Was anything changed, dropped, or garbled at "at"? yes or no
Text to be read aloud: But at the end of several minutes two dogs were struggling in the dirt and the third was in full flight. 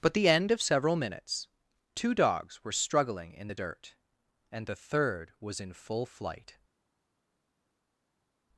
yes